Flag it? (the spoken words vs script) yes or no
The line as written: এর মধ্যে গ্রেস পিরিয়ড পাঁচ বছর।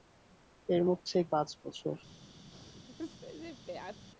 yes